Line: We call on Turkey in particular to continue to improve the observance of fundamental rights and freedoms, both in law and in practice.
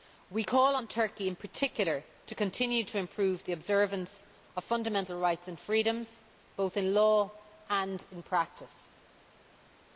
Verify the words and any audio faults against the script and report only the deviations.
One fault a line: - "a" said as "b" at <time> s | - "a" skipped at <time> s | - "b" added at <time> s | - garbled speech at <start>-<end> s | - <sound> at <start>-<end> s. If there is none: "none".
none